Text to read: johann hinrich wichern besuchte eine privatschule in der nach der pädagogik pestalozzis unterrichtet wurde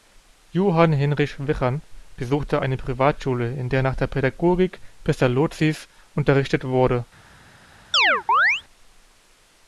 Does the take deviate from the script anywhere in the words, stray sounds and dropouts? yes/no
yes